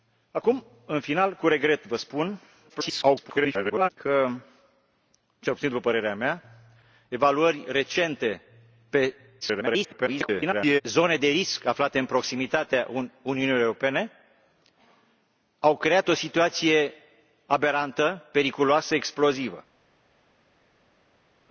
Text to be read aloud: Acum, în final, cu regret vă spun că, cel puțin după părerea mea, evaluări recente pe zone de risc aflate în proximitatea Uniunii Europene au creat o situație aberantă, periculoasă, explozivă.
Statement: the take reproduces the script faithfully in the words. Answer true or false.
false